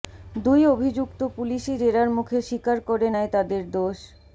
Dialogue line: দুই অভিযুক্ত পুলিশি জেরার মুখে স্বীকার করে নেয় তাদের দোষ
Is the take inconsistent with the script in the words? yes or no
no